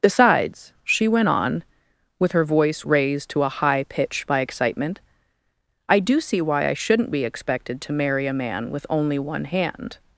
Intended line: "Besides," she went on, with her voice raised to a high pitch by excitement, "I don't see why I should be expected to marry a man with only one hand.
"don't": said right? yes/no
no